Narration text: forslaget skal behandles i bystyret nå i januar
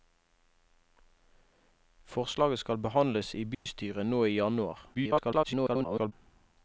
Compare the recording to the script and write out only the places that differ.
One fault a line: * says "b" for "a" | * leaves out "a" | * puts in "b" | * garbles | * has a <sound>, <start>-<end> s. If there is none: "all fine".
* has a dropout, 3.5-3.7 s
* garbles